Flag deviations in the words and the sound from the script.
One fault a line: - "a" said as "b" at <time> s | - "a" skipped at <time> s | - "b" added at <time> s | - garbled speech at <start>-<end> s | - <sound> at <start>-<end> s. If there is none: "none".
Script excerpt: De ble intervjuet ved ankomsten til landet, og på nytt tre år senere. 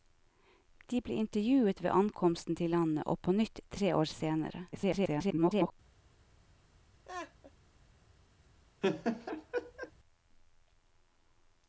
- garbled speech at 4.7-5.7 s
- laugh at 7.0-7.5 s
- laugh at 8.8-9.9 s